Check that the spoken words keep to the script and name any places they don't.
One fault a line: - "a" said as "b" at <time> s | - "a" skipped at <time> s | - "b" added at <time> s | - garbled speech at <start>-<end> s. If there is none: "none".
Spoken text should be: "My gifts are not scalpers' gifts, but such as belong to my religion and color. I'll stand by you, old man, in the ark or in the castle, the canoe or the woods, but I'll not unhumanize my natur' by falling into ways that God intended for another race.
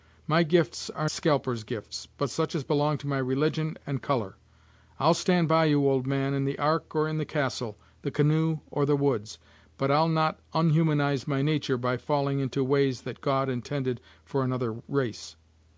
- "not" skipped at 1.1 s